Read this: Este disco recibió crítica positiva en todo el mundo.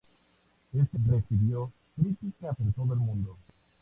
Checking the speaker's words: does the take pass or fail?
fail